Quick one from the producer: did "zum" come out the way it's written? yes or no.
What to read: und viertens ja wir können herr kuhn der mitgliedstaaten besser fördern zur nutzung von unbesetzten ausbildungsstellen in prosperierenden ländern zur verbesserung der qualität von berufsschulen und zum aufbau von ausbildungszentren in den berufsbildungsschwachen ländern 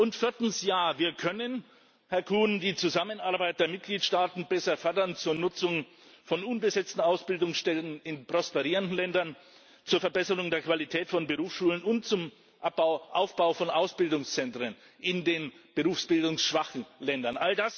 yes